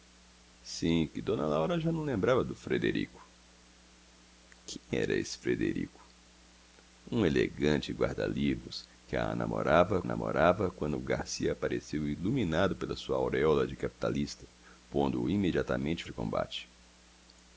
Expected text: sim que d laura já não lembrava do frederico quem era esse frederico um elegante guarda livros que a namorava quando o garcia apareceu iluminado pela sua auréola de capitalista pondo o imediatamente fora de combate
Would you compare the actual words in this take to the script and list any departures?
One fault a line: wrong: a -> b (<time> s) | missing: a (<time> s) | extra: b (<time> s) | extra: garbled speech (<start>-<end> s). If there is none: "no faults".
extra: namorava (10.0 s)
missing: fora (16.0 s)